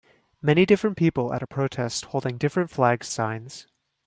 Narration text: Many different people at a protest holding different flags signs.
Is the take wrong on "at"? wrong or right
right